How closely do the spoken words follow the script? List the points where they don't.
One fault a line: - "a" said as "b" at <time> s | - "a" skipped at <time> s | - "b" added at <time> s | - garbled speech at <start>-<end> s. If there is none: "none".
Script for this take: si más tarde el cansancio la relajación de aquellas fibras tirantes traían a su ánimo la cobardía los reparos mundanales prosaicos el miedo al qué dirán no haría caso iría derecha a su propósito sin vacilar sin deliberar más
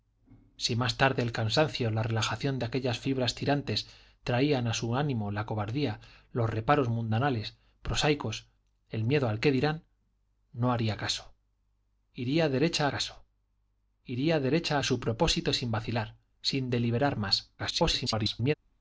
- "caso iría derecha" added at 12.9 s
- garbled speech at 17.6-18.5 s